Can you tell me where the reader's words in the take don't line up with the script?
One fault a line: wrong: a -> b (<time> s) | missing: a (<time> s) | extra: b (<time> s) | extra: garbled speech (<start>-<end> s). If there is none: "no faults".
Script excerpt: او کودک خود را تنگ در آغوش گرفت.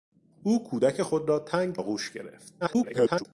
missing: در (1.8 s)
extra: garbled speech (2.6-3.2 s)